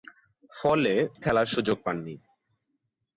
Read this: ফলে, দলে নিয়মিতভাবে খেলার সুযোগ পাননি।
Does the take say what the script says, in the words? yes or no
no